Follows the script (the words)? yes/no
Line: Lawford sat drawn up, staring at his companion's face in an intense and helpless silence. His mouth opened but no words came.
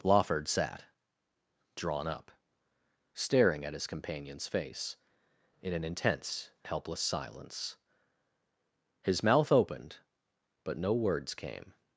no